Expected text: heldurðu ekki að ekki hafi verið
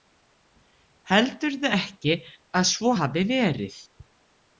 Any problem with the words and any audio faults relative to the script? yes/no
yes